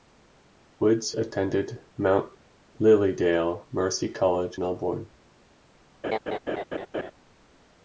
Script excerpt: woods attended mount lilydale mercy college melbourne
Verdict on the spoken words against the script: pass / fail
pass